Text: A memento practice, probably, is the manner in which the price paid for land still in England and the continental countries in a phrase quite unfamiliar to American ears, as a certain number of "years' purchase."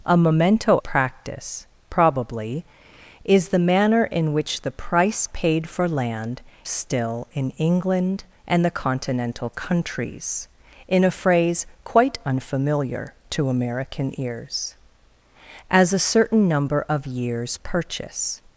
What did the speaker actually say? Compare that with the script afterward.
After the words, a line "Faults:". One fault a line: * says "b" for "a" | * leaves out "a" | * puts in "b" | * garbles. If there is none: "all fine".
A memento practice, probably, is the manner in which the price paid for land still in England and the continental countries in a phrase quite unfamiliar to American ears, as a certain number of "years' purchase."
Faults:
all fine